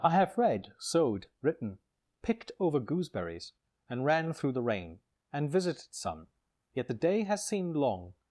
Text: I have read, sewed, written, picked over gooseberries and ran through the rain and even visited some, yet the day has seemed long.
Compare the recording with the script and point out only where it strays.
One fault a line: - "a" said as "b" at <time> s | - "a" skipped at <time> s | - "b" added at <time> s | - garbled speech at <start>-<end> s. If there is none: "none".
- "even" skipped at 5.5 s